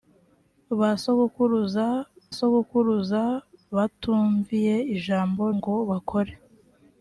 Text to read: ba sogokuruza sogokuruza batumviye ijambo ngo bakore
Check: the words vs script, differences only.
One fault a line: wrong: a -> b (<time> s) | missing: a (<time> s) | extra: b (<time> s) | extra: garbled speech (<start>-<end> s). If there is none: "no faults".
no faults